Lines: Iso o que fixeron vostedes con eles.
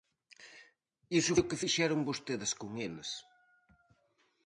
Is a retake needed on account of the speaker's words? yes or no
no